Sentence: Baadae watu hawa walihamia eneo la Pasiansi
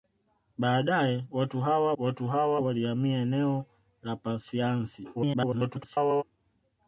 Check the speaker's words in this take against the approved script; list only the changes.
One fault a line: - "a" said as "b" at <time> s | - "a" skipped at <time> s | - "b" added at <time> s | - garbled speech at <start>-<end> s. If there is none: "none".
- "watu hawa" added at 2.0 s
- garbled speech at 5.1-6.2 s